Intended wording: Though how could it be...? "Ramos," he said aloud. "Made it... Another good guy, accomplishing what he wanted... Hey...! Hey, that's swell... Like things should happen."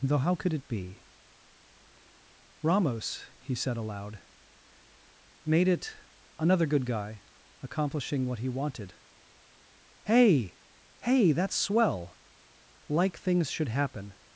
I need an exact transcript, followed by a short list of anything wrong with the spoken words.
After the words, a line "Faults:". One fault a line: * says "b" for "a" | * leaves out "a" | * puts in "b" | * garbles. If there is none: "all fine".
Though how could it be...? "Ramos," he said aloud. "Made it... Another good guy, accomplishing what he wanted... Hey...! Hey, that's swell... Like things should happen."
Faults:
all fine